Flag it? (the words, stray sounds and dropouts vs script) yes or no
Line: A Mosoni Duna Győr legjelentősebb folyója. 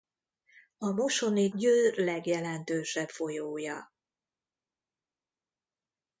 yes